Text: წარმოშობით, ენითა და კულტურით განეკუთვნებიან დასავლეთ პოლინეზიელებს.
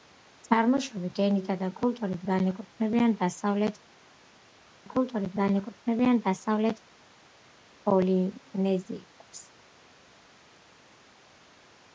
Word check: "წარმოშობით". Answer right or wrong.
right